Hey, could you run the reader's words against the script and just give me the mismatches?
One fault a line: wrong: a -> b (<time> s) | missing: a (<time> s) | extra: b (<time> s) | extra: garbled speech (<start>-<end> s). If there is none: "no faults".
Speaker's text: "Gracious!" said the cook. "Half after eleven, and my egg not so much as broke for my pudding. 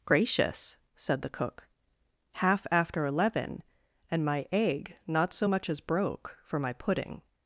no faults